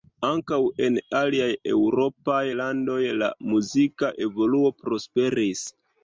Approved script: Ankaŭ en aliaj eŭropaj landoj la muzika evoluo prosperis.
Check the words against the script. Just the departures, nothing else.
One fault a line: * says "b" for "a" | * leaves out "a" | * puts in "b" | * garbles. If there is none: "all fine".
all fine